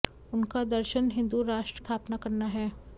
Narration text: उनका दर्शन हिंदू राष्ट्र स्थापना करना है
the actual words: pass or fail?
pass